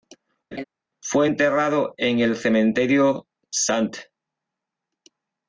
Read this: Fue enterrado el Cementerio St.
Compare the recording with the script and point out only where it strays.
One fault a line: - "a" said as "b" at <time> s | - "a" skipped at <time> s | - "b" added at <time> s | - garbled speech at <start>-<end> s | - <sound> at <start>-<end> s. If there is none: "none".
- laugh at 0.5-0.6 s
- "en" added at 2.0 s